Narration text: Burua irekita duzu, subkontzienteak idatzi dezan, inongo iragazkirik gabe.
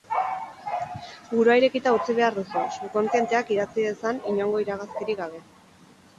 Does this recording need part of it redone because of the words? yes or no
yes